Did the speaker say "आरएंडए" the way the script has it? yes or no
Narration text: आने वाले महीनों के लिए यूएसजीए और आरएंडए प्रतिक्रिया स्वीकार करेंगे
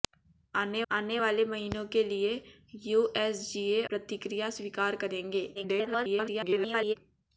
no